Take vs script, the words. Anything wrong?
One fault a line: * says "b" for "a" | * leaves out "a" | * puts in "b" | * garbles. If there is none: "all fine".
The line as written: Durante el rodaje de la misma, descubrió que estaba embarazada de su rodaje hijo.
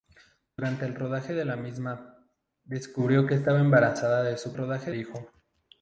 all fine